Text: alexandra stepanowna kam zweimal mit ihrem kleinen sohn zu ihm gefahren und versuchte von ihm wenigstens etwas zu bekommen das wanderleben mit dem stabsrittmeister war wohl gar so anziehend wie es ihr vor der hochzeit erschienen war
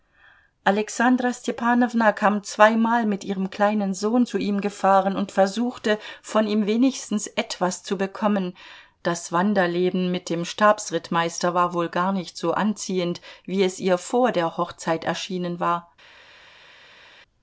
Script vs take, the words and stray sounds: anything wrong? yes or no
yes